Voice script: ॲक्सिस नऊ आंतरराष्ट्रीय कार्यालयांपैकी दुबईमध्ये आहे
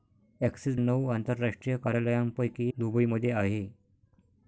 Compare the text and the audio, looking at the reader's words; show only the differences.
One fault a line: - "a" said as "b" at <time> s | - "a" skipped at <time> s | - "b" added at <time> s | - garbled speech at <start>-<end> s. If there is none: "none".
none